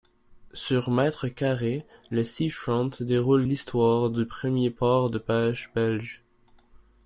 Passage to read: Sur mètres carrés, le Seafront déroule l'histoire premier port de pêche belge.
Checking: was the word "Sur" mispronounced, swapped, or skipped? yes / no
no